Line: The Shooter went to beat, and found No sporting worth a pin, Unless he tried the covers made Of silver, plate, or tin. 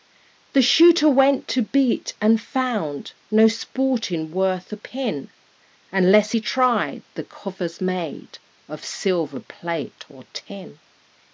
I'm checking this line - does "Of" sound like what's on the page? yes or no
yes